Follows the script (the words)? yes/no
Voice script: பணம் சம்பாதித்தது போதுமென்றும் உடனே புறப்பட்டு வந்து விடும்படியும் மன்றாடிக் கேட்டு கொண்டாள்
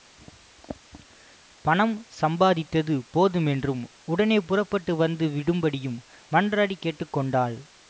yes